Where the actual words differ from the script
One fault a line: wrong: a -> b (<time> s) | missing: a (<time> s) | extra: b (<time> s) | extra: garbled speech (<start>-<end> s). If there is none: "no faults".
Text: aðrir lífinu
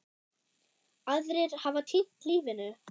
extra: hafa týnt (1.7 s)